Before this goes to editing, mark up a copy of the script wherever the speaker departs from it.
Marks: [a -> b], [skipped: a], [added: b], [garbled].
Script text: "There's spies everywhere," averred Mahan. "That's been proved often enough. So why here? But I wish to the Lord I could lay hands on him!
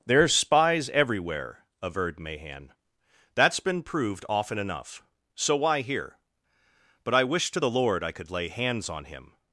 "There's spies everywhere," averred Mahan. "That's been proved often enough. So why here? But I wish to the Lord I could lay hands on him!